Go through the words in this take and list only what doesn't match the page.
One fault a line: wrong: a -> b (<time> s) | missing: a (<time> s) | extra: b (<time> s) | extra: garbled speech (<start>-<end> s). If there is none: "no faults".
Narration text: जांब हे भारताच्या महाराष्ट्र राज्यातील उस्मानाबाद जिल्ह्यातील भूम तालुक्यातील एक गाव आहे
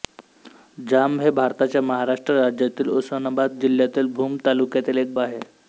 missing: गाव (5.1 s)